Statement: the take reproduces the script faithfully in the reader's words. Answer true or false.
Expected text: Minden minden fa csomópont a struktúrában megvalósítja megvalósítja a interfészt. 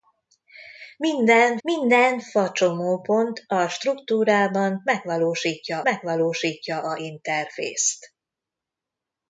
true